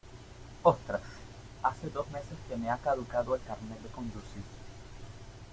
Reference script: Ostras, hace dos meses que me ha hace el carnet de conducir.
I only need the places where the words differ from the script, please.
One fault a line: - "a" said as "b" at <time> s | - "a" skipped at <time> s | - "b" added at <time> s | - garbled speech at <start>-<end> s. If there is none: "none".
- "hace" said as "caducado" at 2.8 s